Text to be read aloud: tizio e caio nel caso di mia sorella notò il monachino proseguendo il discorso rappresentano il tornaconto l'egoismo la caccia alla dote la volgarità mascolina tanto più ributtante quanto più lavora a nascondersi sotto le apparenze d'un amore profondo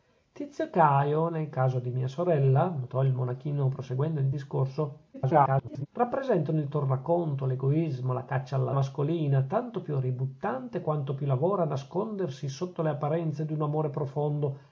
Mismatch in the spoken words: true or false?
true